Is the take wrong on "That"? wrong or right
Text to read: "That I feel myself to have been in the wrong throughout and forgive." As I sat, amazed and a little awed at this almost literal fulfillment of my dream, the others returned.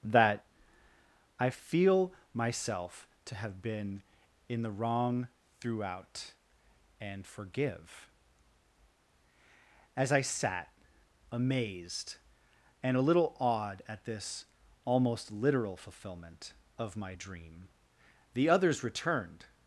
right